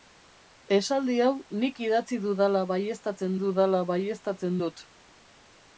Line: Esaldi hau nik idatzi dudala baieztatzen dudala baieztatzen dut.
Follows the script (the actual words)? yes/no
yes